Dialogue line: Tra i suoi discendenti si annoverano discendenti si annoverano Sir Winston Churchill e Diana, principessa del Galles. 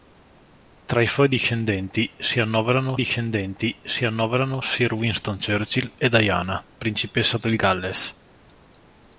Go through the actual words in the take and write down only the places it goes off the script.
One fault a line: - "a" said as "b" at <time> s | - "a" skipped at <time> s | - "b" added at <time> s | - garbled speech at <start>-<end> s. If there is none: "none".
none